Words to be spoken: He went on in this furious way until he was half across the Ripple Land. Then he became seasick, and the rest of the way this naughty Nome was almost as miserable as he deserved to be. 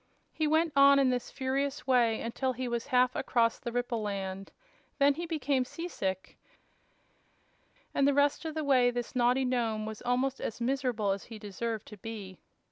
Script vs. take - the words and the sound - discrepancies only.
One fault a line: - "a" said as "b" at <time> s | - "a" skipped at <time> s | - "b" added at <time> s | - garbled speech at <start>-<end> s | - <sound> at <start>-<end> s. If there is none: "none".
none